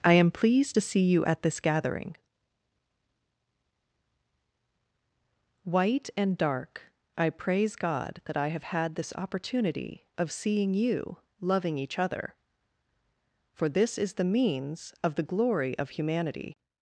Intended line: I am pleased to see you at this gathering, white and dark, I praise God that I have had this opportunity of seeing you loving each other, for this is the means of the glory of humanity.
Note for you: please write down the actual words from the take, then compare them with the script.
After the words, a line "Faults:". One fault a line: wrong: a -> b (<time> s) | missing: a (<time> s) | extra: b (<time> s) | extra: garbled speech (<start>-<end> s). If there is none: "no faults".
I am pleased to see you at this gathering, white and dark, I praise God that I have had this opportunity of seeing you loving each other, for this is the means of the glory of humanity.
Faults:
no faults